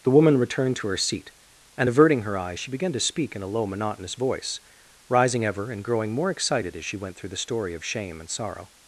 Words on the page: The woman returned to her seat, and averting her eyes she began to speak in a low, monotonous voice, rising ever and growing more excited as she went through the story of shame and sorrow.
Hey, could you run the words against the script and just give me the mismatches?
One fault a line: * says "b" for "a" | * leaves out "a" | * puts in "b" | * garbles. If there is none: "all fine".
all fine